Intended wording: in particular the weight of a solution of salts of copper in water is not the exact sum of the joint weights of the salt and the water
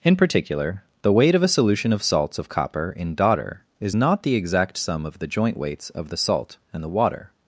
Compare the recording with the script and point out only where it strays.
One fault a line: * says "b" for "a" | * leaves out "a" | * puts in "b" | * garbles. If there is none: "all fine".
* says "daughter" for "water"